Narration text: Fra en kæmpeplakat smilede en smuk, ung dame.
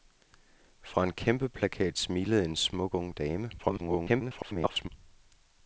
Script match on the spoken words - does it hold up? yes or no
no